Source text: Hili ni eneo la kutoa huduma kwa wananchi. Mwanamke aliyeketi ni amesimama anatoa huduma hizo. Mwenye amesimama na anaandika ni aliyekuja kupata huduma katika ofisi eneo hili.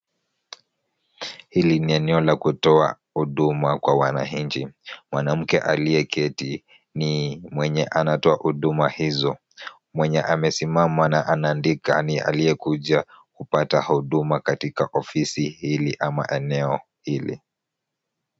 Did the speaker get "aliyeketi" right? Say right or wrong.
right